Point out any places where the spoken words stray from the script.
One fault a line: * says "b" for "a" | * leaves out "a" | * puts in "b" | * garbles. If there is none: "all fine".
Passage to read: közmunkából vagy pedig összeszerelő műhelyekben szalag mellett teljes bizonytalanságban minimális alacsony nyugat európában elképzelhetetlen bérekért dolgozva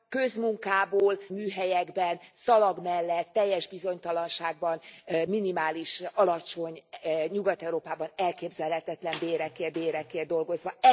* leaves out "vagy pedig összeszerelő"
* puts in "bérekért"